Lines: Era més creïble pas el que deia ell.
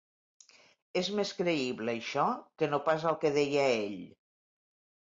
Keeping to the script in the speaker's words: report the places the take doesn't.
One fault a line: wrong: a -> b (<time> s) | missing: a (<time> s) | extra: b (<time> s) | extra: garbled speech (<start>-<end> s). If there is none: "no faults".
wrong: Era -> És (1.0 s)
extra: això que no (2.0 s)